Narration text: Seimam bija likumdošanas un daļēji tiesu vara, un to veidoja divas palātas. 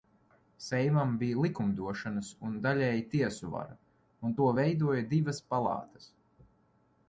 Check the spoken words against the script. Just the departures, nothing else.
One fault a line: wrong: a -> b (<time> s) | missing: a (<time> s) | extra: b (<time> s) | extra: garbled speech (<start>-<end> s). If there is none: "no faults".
no faults